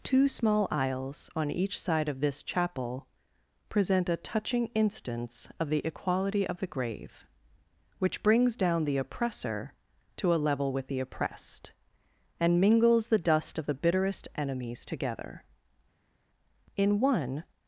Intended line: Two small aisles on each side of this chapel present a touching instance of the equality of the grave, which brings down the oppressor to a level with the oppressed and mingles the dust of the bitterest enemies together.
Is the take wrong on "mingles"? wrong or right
right